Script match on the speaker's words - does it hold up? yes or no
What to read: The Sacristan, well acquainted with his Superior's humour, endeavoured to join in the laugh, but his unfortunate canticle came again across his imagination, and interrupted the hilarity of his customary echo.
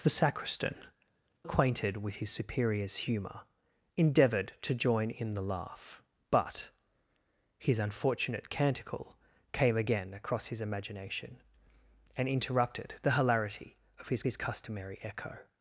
no